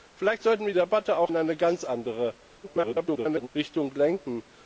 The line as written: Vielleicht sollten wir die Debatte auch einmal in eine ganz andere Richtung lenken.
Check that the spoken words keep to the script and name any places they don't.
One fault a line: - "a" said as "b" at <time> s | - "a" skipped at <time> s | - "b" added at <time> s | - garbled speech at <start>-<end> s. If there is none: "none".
- "die" skipped at 0.7 s
- "einmal" skipped at 1.3 s
- garbled speech at 2.6-3.5 s